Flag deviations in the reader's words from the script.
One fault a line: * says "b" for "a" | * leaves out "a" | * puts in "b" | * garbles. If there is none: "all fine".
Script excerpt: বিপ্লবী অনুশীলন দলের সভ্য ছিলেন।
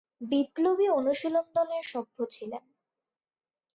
all fine